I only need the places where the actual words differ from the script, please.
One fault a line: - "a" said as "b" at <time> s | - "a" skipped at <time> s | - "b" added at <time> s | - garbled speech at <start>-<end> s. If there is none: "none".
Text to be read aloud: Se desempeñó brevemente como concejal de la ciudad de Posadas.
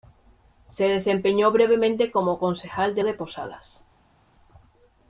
- "la ciudad" skipped at 3.0 s